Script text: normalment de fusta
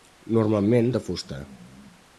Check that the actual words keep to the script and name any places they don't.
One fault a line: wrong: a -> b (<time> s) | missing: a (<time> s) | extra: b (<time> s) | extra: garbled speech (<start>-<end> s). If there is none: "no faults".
no faults